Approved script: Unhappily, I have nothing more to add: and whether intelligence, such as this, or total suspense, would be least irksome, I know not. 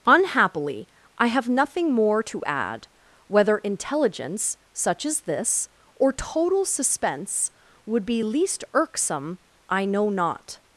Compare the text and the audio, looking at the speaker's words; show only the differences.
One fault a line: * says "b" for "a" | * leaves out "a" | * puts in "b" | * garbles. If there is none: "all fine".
* leaves out "and"